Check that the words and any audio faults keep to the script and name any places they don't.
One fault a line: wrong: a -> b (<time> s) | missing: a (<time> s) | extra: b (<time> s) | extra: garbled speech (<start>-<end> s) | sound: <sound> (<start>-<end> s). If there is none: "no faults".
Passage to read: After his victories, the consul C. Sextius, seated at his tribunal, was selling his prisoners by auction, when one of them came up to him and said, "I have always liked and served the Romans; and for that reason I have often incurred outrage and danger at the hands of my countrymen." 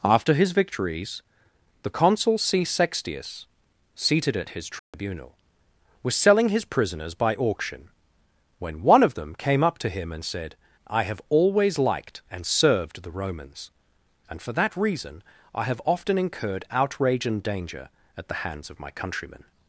sound: dropout (4.8-4.9 s)